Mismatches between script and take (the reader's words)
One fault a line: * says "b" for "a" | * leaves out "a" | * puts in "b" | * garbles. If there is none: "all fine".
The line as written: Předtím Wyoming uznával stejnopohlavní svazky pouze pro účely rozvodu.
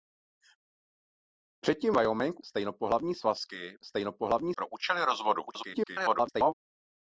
* leaves out "uznával"
* says "stejnopohlavní" for "pouze"
* garbles